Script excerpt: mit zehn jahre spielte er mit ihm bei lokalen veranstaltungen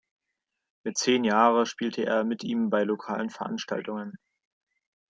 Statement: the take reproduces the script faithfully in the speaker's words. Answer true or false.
true